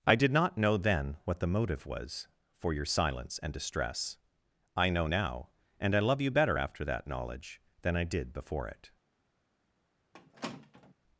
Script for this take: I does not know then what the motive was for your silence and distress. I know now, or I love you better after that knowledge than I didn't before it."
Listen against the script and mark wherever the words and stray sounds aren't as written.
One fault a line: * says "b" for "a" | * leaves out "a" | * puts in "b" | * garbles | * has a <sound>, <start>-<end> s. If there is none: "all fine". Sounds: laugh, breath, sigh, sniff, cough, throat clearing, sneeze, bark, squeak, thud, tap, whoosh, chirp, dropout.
* says "did" for "does"
* says "and" for "or"
* says "did" for "didn't"
* has a squeak, 10.1-10.9 s